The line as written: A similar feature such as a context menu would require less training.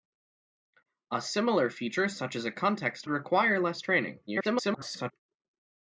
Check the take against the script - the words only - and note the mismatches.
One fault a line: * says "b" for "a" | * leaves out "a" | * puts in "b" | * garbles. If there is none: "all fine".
* leaves out "menu would"
* garbles